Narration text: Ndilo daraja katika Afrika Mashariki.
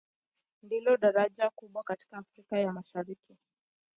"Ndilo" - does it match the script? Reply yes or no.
yes